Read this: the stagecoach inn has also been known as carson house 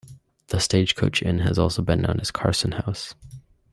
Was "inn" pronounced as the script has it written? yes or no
yes